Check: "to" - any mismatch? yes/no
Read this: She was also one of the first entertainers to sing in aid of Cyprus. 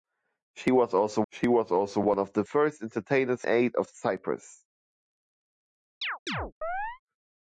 yes